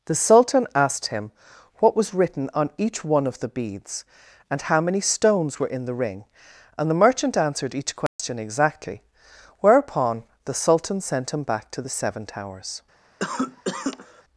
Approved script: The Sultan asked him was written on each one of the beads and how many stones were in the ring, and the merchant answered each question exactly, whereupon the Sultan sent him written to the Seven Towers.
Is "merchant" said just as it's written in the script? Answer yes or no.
yes